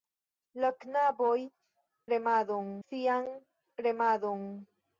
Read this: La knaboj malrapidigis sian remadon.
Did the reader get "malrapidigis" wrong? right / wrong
wrong